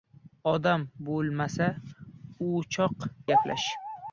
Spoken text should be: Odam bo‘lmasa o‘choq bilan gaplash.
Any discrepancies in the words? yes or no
yes